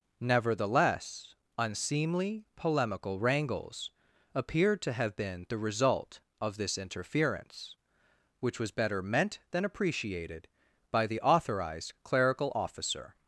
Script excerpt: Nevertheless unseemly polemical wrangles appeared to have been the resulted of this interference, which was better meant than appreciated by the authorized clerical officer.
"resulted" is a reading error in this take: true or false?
true